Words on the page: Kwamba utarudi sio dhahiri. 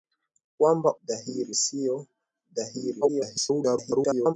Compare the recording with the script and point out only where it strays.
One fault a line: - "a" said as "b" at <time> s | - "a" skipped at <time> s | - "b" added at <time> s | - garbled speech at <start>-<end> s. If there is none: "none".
- "utarudi" said as "dhahiri" at 1.1 s
- garbled speech at 3.0-4.3 s